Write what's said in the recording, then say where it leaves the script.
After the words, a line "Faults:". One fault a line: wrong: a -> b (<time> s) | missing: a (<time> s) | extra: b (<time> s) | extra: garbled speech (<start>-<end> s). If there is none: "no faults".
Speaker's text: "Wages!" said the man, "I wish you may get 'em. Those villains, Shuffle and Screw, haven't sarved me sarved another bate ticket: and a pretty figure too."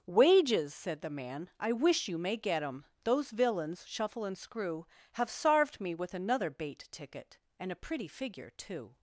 "Wages!" said the man, "I wish you may get 'em. Those villains, Shuffle and Screw, have sarved me with another bate ticket: and a pretty figure too."
Faults:
wrong: haven't -> have (5.1 s)
wrong: sarved -> with (5.9 s)